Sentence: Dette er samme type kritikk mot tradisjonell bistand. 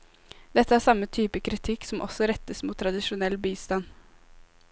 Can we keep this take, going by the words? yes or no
no